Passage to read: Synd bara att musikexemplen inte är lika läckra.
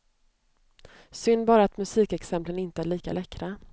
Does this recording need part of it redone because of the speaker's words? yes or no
no